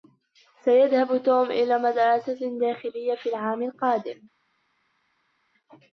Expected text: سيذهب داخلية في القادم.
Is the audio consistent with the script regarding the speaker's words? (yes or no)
no